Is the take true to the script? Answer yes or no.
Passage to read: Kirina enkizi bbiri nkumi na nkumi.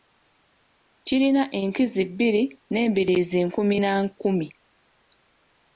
no